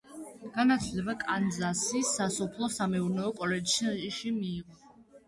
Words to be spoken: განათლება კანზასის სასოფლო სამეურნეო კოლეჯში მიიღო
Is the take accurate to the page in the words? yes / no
yes